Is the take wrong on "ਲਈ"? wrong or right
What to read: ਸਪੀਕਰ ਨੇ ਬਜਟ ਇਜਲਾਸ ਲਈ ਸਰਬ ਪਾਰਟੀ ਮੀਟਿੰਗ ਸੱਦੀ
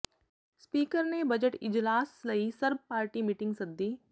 right